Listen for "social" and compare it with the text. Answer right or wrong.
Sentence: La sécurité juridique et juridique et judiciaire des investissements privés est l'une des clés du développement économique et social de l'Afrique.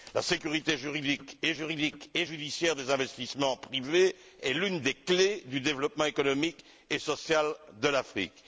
right